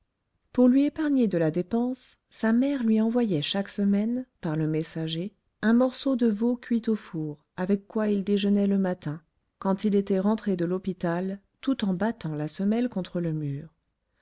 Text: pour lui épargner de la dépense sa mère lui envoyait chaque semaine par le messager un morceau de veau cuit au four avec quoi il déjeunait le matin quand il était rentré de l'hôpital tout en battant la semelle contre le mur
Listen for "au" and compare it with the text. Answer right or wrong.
right